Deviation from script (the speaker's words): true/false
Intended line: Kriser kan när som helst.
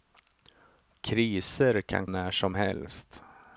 false